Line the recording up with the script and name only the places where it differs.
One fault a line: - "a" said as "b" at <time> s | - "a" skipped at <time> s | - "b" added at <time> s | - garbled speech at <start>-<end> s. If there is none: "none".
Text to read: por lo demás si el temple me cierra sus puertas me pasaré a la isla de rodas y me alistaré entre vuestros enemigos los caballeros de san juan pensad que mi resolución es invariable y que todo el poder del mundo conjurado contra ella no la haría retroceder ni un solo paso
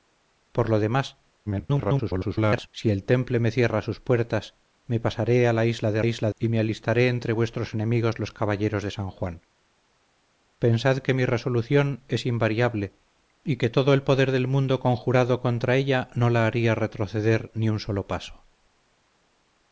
- garbled speech at 1.5-2.7 s
- "rodas" said as "isla" at 6.1 s